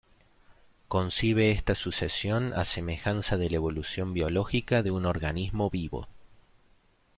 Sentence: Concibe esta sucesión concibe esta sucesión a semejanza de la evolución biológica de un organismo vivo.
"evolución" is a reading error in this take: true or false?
false